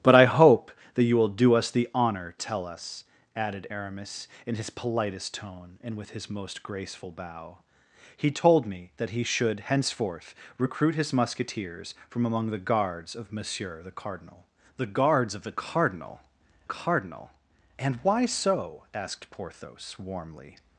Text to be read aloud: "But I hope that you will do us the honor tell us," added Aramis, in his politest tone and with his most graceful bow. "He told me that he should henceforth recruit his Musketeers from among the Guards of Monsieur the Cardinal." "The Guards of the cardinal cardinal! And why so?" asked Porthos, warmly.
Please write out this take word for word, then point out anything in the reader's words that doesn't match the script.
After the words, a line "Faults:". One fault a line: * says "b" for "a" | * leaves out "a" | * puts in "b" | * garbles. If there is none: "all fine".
"But I hope that you will do us the honor tell us," added Aramis, in his politest tone and with his most graceful bow. "He told me that he should henceforth recruit his Musketeers from among the Guards of Monsieur the Cardinal." "The Guards of the cardinal cardinal! And why so?" asked Porthos, warmly.
Faults:
all fine